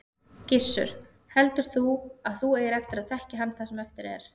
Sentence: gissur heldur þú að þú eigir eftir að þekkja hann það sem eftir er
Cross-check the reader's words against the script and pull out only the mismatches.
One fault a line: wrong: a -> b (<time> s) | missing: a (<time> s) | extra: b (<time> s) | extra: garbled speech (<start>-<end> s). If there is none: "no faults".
no faults